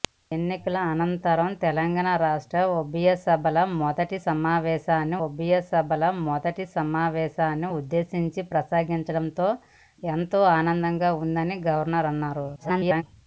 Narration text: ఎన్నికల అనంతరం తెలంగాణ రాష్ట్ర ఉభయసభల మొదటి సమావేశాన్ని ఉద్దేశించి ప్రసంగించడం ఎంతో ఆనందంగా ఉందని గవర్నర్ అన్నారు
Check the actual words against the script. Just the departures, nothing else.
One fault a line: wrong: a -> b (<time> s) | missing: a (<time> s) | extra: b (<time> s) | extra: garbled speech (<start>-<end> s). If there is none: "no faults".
extra: ఉభయసభల మొదటి సమావేశాన్ని (5.2 s)
extra: garbled speech (12.6-13.0 s)